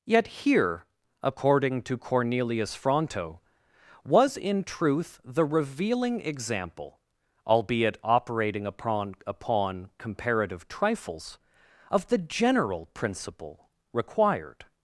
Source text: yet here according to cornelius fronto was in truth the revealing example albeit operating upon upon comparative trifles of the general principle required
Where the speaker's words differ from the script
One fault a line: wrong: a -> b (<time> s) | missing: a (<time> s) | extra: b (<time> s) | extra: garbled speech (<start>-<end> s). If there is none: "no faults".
no faults